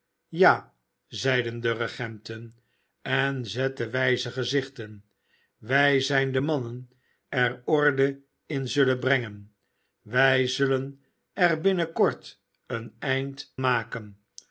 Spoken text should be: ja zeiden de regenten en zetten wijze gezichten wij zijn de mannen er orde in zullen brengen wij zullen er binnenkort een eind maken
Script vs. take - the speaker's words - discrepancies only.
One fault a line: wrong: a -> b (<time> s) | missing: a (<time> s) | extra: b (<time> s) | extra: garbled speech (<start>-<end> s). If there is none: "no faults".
no faults